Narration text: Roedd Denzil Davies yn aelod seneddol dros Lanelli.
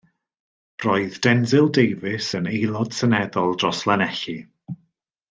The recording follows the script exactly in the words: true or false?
true